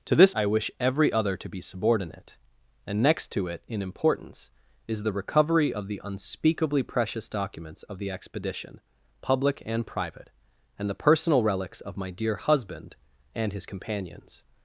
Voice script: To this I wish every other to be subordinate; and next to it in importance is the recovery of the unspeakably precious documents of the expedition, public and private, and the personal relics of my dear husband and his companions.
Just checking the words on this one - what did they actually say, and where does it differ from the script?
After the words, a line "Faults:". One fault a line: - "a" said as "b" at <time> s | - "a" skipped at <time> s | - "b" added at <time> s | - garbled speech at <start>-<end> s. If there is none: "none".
To this I wish every other to be subordinate; and next to it in importance is the recovery of the unspeakably precious documents of the expedition, public and private, and the personal relics of my dear husband and his companions.
Faults:
none